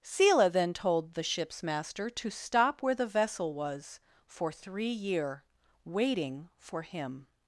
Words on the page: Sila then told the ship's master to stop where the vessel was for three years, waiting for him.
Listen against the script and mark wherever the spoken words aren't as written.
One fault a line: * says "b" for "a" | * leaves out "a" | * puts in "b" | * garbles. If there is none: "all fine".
* says "year" for "years"